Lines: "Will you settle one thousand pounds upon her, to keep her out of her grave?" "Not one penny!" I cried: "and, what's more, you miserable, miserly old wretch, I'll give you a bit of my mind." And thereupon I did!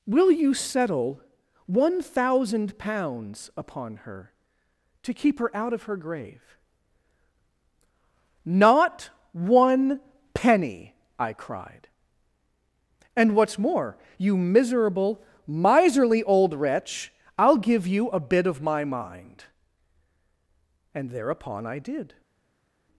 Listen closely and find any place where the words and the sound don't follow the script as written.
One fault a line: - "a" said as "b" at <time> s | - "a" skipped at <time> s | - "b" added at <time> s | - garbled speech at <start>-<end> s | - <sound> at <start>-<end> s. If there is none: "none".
none